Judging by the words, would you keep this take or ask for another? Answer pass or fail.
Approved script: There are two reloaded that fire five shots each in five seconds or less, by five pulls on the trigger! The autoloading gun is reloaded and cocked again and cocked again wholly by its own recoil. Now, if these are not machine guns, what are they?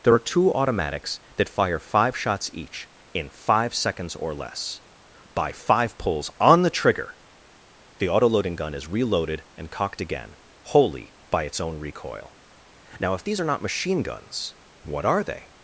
fail